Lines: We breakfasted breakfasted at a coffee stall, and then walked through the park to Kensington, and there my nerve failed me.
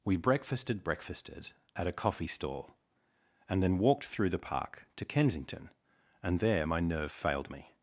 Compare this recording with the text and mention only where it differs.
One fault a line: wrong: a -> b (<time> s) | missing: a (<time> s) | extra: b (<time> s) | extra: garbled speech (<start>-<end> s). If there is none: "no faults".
no faults